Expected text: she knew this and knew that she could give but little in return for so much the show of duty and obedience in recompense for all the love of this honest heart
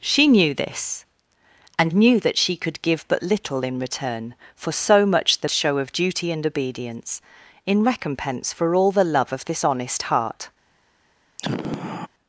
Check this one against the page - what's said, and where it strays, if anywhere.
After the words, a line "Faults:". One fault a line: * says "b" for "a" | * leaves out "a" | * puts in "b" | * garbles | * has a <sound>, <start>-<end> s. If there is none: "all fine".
she knew this and knew that she could give but little in return for so much the show of duty and obedience in recompense for all the love of this honest heart
Faults:
* has a sigh, 11.4-12.1 s